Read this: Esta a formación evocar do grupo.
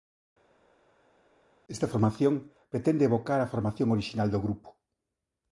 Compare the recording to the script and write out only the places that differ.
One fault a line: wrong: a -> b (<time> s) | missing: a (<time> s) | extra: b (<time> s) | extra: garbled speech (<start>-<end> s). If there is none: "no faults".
extra: formación pretende evocar (1.9 s)
wrong: evocar -> orixinal (3.9 s)